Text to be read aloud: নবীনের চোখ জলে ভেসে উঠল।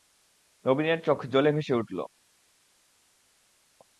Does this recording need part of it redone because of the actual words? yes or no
no